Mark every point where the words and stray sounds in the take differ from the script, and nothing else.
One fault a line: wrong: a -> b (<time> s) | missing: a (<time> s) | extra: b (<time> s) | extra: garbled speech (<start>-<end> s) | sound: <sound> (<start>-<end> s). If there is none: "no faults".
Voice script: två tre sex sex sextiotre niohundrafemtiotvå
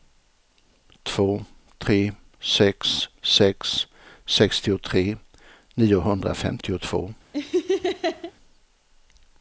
sound: laugh (7.3-8.3 s)